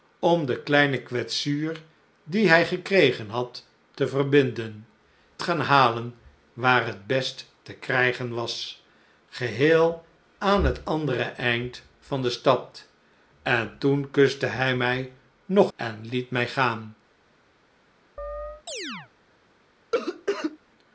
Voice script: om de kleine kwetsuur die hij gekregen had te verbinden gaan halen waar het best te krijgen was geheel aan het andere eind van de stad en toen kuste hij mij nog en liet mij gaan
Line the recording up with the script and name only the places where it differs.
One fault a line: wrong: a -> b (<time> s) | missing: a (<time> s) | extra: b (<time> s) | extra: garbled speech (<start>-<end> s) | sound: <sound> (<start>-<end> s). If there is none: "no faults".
sound: chirp (18.2-19.1 s)
sound: cough (19.9-20.6 s)